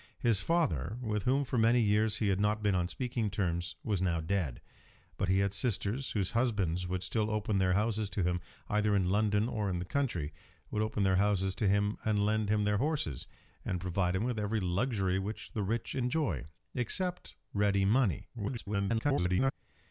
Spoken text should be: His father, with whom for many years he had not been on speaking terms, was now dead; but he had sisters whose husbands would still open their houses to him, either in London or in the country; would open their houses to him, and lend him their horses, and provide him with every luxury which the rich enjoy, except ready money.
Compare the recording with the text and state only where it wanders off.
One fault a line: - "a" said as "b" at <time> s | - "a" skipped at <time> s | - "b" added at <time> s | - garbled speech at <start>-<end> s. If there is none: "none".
- garbled speech at 18.3-19.5 s